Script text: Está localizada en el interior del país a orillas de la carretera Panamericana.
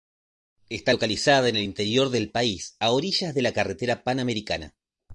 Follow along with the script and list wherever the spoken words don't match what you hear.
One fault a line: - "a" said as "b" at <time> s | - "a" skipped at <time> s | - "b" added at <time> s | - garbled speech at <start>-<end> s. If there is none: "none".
none